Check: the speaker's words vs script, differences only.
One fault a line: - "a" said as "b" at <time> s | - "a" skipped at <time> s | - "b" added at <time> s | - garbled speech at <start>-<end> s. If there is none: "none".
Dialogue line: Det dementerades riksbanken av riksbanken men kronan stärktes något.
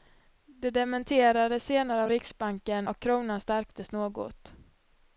- "riksbanken" said as "senare" at 1.6 s
- "men" said as "och" at 2.9 s